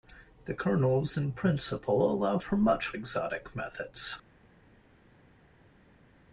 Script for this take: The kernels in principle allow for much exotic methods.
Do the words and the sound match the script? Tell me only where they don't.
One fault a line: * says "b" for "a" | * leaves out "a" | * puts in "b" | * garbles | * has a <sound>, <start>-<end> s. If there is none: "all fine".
all fine